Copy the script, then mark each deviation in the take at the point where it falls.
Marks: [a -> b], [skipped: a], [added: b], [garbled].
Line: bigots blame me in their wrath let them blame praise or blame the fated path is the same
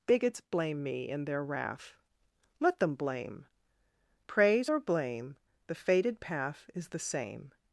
bigots blame me in their wrath let them blame praise or blame the fated path is the same